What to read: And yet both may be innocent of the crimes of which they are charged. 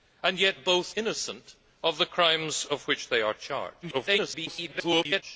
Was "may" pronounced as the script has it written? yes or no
no